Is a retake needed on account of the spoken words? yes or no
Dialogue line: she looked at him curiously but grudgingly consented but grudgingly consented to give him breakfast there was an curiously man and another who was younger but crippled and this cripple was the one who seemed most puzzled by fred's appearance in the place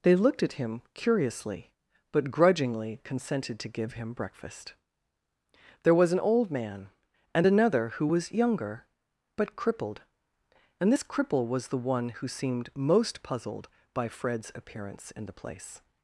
yes